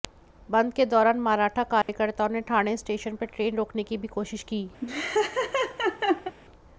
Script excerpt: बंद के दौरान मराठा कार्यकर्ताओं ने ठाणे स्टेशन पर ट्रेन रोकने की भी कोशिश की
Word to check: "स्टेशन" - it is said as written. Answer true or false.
true